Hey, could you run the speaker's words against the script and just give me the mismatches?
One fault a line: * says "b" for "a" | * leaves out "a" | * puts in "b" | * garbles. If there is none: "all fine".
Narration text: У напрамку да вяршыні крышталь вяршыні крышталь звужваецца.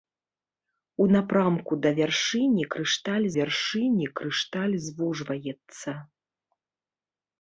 all fine